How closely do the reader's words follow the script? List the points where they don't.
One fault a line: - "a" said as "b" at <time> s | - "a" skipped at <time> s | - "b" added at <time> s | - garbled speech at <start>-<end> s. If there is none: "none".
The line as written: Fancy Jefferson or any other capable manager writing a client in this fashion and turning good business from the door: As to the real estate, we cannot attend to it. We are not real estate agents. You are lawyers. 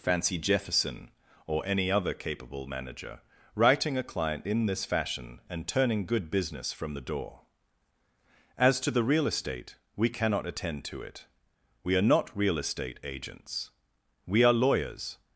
- "You" said as "We" at 14.3 s